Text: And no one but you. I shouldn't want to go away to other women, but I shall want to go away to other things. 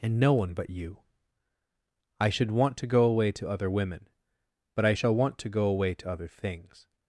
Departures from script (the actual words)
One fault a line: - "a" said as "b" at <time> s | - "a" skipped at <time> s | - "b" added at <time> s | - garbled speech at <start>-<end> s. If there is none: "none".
- "shouldn't" said as "should" at 2.3 s